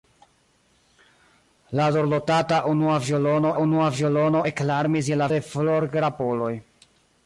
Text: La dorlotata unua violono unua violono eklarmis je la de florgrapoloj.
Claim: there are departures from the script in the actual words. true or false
false